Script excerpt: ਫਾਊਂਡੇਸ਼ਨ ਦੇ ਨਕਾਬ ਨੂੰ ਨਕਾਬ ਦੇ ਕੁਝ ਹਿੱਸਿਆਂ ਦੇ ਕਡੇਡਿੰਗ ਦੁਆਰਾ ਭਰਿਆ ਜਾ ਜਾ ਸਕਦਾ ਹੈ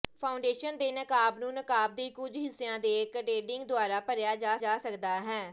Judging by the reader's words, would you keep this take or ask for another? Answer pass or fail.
pass